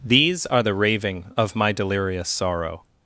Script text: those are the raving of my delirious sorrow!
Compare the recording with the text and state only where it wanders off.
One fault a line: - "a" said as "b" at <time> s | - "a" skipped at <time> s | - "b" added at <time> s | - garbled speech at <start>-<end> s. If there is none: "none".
- "those" said as "these" at 0.0 s